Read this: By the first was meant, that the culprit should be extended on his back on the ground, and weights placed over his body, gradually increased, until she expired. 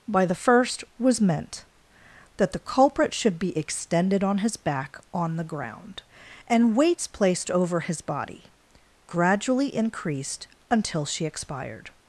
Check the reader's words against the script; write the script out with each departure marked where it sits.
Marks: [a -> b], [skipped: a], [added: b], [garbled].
By the first was meant, that the culprit should be extended on his back on the ground, and weights placed over his body, gradually increased, until she expired.